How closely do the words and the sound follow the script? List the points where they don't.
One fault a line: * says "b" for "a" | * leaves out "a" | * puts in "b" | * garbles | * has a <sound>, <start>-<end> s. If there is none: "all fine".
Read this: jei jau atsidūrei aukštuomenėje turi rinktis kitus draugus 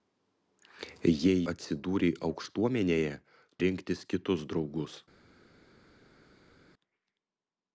* leaves out "jau"
* leaves out "turi"